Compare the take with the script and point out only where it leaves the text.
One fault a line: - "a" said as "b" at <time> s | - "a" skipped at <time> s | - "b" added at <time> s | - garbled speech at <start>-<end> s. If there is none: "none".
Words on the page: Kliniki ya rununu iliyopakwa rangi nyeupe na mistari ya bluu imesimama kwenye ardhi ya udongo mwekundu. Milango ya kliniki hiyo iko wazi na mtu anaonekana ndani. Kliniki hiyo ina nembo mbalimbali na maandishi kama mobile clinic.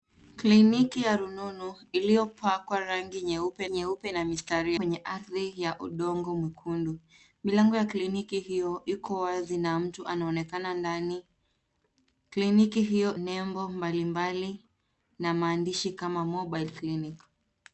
- "nyeupe" added at 3.7 s
- "ya bluu imesimama" skipped at 4.7 s
- "ina" skipped at 13.2 s